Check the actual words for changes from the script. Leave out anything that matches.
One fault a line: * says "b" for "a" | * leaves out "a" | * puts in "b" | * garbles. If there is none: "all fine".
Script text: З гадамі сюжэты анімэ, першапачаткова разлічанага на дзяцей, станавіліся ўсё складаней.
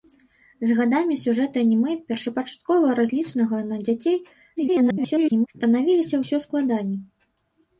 * garbles